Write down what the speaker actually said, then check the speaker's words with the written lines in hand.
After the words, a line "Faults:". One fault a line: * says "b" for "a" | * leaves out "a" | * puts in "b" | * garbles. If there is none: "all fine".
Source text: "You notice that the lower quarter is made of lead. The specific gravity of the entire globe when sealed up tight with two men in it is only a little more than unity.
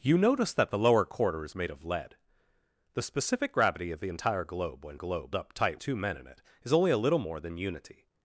"You notice that the lower quarter is made of lead. The specific gravity of the entire globe when globe up tight two men in it is only a little more than unity.
Faults:
* says "globe" for "sealed"
* leaves out "with"